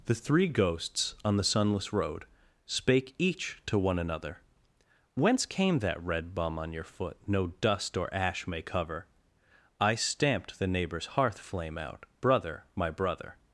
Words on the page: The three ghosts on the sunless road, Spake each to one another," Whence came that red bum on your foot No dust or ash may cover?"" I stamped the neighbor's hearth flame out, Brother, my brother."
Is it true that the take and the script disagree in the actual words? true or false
false